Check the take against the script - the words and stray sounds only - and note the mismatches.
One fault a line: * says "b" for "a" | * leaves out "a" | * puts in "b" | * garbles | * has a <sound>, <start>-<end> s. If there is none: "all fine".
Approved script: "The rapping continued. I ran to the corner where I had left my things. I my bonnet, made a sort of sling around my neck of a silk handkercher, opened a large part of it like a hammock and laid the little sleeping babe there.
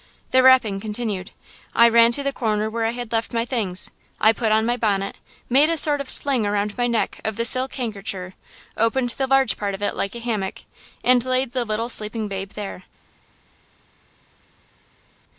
* puts in "put on"
* says "the" for "a"
* says "the" for "a"